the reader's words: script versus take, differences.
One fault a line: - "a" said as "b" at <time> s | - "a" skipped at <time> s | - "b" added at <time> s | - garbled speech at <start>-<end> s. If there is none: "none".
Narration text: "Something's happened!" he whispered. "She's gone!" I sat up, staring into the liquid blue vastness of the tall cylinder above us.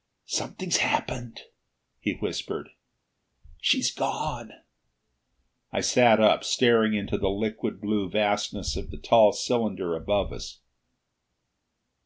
none